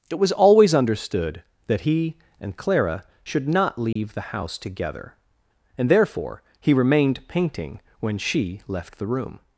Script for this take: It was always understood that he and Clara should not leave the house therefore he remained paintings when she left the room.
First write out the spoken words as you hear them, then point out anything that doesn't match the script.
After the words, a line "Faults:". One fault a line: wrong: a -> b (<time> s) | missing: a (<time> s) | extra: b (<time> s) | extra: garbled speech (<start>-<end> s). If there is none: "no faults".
It was always understood that he and Clara should not leave the house together, and therefore he remained painting when she left the room.
Faults:
extra: together and (4.6 s)
wrong: paintings -> painting (7.3 s)